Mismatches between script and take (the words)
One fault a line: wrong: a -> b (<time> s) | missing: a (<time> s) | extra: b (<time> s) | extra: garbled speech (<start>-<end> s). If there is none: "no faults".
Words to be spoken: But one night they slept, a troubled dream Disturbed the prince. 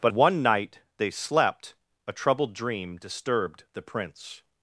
no faults